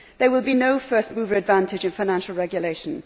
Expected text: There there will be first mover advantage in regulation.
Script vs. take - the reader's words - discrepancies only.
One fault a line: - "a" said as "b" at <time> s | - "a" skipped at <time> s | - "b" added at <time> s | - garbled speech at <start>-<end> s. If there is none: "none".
- "there" skipped at 0.3 s
- "no" added at 0.5 s
- "financial" added at 1.9 s